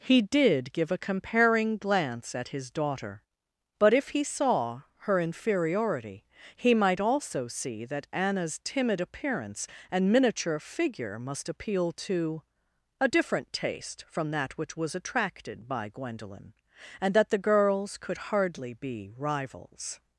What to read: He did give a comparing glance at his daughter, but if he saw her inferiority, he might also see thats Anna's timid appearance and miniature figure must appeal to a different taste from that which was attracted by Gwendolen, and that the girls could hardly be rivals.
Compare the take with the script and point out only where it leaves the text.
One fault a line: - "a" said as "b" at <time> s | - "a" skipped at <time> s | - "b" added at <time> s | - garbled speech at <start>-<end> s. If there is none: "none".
- "thats" said as "that" at 7.8 s